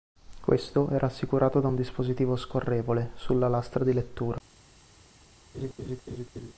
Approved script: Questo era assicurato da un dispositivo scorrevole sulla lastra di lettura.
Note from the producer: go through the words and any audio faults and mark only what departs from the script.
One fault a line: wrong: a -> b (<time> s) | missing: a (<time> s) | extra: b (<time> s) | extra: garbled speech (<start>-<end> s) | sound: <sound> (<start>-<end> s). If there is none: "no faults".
sound: laugh (5.5-6.5 s)